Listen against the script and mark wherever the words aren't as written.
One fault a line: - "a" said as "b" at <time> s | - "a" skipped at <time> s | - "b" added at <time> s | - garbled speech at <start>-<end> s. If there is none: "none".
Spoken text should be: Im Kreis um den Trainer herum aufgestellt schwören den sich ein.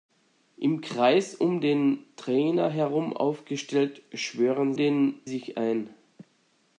none